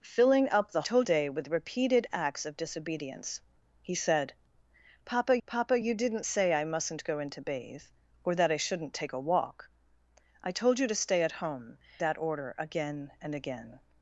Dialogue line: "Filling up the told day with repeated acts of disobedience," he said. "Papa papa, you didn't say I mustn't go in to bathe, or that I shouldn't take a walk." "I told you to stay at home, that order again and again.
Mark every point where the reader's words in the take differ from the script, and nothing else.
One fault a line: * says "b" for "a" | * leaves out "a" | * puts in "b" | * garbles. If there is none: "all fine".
all fine